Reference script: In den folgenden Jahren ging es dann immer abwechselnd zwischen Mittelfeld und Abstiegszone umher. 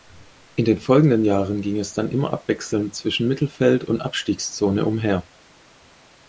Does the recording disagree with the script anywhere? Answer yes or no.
no